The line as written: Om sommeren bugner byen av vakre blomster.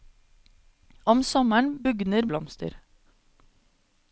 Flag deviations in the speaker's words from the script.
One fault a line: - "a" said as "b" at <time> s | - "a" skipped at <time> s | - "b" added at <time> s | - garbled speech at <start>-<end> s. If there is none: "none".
- "byen av vakre" skipped at 2.3 s